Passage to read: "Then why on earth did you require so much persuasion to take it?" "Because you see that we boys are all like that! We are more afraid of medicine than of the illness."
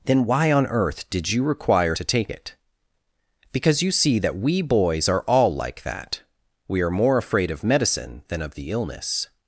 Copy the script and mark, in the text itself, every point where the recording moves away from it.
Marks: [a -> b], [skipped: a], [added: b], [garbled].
"Then why on earth did you require [skipped: so much persuasion] to take it?" "Because you see that we boys are all like that! We are more afraid of medicine than of the illness."